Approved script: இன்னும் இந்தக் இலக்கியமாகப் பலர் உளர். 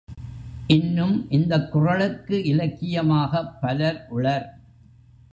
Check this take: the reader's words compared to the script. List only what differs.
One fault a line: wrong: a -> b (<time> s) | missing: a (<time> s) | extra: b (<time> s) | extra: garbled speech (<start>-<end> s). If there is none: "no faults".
extra: குறளுக்கு (1.7 s)